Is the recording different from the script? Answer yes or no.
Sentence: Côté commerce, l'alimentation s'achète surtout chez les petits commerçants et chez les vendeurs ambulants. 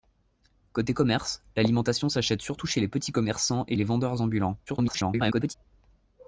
yes